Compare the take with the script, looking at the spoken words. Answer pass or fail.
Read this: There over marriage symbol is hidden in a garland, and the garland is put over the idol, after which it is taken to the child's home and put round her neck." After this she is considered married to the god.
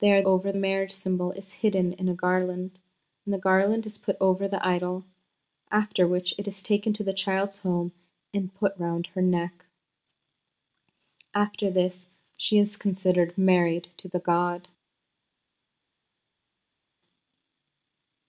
pass